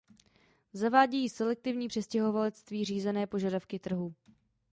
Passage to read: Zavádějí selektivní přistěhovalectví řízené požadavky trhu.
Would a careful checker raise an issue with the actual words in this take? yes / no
no